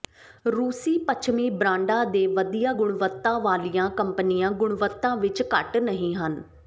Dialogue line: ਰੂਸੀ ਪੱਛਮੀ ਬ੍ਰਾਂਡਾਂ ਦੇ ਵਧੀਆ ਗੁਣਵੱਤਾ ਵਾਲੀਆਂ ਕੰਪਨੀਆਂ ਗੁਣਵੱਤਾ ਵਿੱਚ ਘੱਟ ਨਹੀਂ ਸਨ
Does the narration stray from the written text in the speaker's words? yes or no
yes